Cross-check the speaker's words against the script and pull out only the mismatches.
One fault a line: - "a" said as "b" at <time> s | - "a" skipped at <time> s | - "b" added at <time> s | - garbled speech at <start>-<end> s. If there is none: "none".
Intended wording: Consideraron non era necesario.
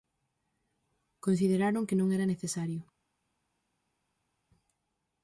- "que" added at 1.9 s